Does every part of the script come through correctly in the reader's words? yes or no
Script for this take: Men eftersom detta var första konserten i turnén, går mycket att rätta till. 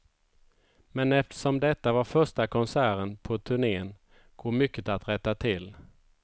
no